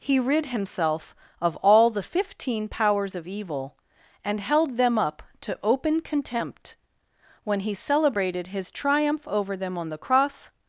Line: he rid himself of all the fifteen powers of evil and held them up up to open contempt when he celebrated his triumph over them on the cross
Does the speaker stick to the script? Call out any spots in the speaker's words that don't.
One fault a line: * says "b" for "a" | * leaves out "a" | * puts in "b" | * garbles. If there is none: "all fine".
* leaves out "up"